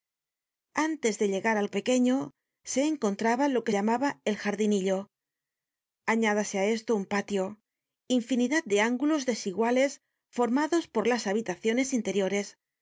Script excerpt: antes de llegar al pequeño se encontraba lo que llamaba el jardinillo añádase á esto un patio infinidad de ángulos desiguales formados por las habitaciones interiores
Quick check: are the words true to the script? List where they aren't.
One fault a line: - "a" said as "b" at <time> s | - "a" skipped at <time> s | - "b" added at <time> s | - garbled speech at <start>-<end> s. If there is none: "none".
none